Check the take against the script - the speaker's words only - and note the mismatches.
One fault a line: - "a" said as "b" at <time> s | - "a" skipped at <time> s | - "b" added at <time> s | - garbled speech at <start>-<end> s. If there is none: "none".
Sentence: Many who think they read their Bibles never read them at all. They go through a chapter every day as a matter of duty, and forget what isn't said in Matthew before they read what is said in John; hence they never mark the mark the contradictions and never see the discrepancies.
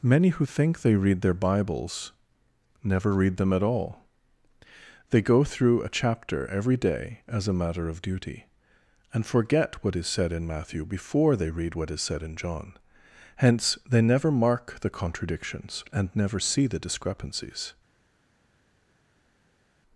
- "isn't" said as "is" at 9.9 s
- "mark the" skipped at 14.9 s